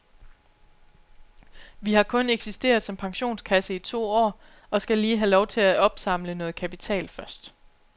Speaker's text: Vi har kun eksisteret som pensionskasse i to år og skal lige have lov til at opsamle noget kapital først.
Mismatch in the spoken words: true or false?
false